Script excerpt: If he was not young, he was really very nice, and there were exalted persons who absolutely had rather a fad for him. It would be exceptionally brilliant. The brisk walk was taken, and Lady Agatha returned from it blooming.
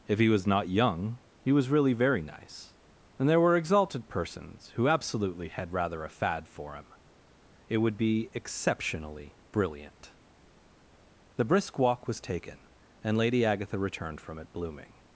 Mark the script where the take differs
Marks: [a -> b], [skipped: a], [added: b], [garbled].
If he was not young, he was really very nice, and there were exalted persons who absolutely had rather a fad for him. It would be exceptionally brilliant. The brisk walk was taken, and Lady Agatha returned from it blooming.